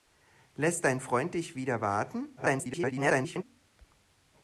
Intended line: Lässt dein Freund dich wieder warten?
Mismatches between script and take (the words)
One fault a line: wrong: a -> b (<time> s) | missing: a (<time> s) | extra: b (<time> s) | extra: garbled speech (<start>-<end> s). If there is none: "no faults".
extra: garbled speech (2.4-3.4 s)